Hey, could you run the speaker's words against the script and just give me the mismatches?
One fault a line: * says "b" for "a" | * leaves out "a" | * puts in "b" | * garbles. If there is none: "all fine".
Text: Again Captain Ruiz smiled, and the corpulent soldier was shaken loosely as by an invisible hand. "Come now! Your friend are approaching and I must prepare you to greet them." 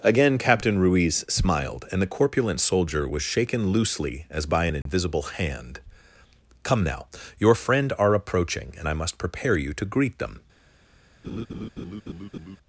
all fine